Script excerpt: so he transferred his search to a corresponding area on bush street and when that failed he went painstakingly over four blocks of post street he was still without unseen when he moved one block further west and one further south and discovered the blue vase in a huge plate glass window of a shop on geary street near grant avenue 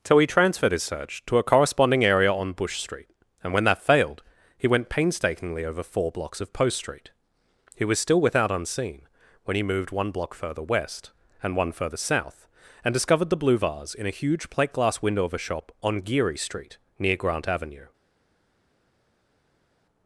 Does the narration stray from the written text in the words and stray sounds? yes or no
no